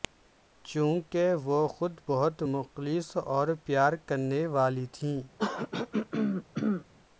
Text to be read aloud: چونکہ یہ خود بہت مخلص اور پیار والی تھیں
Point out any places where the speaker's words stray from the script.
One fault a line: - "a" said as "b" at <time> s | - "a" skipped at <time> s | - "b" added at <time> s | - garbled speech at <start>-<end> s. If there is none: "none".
- "یہ" said as "وہ" at 1.4 s
- "کرنے" added at 4.1 s